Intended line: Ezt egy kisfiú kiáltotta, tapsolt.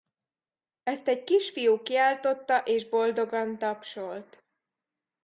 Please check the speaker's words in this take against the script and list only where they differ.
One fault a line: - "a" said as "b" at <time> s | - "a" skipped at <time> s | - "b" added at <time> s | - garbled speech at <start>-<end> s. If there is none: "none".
- "és boldogan" added at 2.6 s